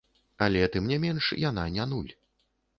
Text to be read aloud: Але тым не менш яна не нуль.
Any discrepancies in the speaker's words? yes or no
no